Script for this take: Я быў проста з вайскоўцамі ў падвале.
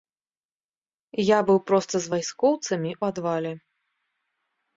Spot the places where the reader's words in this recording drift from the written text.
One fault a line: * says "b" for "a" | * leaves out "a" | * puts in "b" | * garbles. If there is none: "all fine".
* leaves out "ў"